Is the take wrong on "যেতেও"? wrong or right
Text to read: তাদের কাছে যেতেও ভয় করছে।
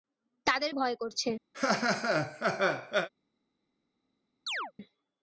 wrong